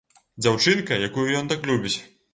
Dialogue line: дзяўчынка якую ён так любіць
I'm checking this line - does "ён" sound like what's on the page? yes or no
yes